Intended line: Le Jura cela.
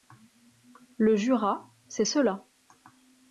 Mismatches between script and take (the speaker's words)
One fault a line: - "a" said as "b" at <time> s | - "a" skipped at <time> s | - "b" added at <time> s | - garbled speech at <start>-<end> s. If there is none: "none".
- "c'est" added at 1.9 s